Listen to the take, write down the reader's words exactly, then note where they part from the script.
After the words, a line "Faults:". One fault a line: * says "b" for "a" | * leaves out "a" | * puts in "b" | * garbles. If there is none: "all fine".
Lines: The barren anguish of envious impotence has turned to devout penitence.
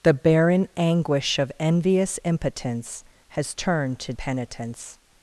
The barren anguish of envious impotence has turned to penitence.
Faults:
* leaves out "devout"